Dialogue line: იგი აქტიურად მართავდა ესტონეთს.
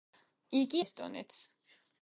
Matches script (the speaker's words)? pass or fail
fail